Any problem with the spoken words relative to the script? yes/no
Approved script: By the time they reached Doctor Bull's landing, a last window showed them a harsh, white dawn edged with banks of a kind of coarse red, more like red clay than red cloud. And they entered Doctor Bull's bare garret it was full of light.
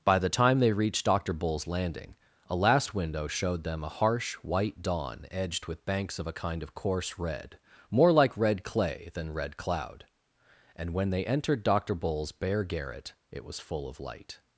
yes